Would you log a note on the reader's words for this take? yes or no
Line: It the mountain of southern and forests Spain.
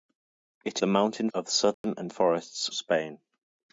no